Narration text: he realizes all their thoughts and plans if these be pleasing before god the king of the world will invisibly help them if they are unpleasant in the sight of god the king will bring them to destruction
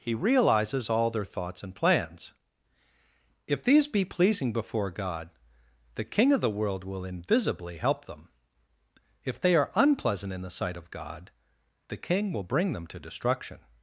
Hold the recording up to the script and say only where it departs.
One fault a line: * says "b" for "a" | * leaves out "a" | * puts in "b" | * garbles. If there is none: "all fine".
all fine